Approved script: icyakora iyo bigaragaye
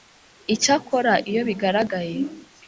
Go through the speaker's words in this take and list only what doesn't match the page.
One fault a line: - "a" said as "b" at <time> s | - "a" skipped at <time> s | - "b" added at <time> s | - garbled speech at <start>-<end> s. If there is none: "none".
none